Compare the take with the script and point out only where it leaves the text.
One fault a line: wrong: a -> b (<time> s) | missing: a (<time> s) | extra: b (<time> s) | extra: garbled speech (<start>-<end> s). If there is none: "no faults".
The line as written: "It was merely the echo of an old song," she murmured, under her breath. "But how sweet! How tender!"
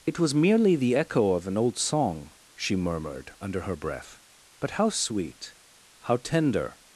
no faults